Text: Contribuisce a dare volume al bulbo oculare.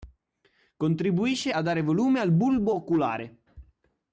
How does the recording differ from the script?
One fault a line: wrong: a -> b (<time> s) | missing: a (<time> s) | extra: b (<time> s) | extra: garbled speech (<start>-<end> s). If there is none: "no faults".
no faults